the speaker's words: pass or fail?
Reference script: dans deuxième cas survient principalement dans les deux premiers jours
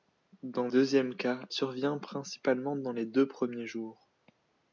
pass